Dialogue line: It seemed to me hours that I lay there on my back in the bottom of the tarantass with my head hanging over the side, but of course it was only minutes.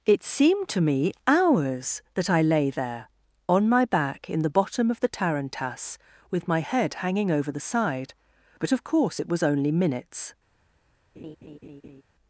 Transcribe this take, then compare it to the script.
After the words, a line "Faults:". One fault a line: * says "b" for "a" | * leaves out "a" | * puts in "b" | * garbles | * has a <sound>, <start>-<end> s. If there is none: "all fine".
It seemed to me hours that I lay there on my back in the bottom of the tarantass with my head hanging over the side, but of course it was only minutes.
Faults:
* has a laugh, 11.2-12.0 s